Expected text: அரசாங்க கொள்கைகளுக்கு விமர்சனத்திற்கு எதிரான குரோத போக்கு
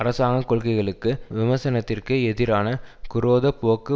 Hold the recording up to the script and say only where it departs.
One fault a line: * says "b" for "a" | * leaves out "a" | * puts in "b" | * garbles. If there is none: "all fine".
all fine